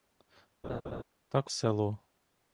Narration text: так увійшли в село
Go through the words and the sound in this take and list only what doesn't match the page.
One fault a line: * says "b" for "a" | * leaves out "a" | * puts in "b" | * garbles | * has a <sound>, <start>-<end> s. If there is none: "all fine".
* has a laugh, 0.6-1.0 s
* leaves out "увійшли"